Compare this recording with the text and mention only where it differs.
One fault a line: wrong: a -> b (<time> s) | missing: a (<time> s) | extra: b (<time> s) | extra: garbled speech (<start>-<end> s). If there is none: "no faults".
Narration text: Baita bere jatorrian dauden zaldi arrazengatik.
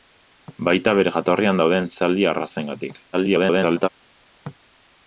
extra: garbled speech (3.1-3.9 s)